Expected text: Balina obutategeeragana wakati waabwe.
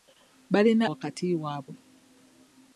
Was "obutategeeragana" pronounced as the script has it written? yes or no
no